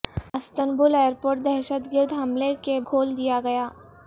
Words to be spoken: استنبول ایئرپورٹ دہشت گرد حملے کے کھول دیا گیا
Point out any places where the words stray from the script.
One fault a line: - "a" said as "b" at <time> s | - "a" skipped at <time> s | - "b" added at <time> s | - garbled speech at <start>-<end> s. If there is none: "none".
none